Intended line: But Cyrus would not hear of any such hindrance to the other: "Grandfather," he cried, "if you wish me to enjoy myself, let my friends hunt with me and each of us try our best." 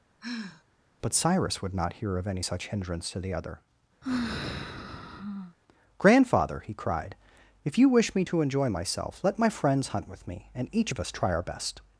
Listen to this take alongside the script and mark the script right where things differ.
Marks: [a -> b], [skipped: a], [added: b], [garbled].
But Cyrus would not hear of any such hindrance to the other: "Grandfather," he cried, "if you wish me to enjoy myself, let my friends hunt with me and each of us try our best."